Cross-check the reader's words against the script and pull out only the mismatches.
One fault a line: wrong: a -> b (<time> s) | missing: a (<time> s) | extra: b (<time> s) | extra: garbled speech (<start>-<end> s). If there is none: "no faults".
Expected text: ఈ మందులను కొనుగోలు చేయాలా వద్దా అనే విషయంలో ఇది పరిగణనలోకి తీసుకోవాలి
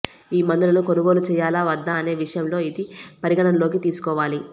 no faults